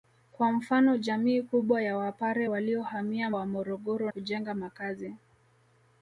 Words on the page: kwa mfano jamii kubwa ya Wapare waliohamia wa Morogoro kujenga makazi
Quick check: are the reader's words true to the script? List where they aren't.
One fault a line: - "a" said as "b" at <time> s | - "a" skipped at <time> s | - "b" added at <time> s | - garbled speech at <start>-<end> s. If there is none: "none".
none